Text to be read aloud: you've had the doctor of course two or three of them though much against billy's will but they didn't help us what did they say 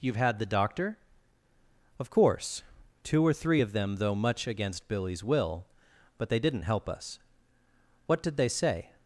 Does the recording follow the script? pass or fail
pass